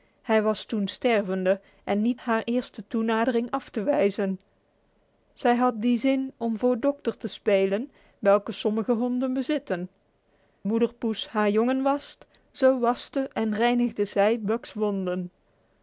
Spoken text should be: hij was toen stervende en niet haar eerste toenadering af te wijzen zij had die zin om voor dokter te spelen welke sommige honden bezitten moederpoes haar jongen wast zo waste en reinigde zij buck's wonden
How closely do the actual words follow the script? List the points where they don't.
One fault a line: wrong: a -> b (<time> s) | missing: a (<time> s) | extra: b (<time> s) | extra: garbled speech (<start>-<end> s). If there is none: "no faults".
no faults